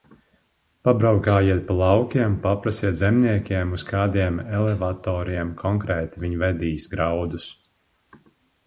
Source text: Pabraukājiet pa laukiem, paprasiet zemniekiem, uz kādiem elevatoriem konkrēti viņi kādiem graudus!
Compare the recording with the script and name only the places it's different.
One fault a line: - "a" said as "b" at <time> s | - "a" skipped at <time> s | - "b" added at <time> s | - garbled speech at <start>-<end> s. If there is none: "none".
- "kādiem" said as "vedīs" at 6.5 s